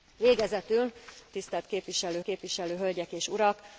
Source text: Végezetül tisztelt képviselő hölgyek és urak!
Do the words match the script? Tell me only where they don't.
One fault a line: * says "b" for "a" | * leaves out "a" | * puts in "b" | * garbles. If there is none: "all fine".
* puts in "képviselő"